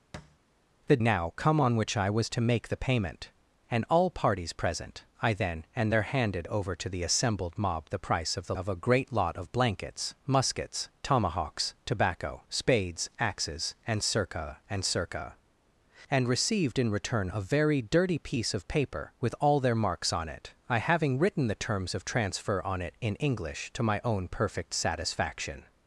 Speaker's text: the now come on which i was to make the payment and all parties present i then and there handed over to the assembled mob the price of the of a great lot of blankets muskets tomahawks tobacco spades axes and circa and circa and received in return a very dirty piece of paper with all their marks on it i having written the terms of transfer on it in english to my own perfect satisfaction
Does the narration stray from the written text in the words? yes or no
no